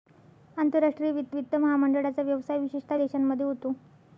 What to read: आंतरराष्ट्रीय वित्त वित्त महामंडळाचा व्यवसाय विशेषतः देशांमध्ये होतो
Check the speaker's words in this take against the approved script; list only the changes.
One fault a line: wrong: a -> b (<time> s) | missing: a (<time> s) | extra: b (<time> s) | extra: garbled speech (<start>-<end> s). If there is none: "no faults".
no faults